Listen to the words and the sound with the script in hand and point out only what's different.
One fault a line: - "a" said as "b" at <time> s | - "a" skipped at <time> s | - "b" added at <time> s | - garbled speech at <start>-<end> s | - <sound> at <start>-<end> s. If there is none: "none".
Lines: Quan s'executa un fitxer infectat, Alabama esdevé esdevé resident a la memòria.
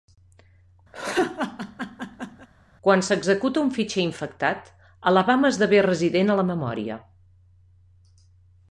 - laugh at 0.9-2.5 s
- "esdevé" skipped at 5.8 s